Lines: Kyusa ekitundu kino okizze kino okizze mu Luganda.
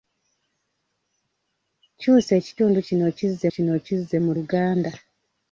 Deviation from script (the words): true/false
false